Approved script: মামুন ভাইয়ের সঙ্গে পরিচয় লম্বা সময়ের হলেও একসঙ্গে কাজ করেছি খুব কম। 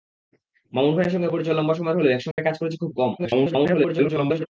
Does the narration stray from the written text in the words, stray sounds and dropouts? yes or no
yes